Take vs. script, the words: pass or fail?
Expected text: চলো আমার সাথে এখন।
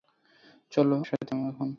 fail